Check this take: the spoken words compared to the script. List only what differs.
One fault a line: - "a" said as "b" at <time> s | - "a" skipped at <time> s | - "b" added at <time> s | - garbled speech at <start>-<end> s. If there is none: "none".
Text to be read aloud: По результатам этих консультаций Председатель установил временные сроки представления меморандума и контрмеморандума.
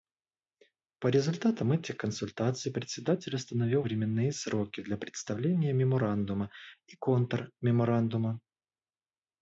- "для" added at 4.8 s